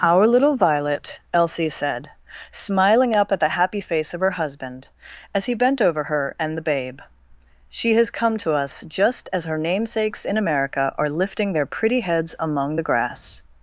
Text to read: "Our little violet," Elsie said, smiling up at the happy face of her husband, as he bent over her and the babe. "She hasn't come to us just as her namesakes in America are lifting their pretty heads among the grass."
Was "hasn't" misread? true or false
true